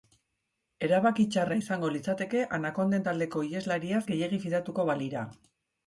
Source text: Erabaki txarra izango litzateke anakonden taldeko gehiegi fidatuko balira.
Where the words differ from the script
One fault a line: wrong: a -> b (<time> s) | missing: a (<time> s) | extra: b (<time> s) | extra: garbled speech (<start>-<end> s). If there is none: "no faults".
extra: iheslariaz (3.5 s)